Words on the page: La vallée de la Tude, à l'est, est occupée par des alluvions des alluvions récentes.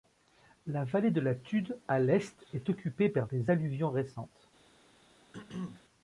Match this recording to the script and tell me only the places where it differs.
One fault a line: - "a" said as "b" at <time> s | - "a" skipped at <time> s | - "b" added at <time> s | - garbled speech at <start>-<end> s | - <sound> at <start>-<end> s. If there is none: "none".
- "des alluvions" skipped at 3.9 s
- throat clearing at 5.3-5.8 s